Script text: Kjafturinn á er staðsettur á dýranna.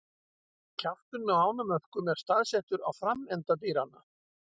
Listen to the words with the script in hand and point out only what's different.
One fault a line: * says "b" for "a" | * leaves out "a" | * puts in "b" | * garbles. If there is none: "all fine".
* puts in "ánamöðkum"
* puts in "framenda"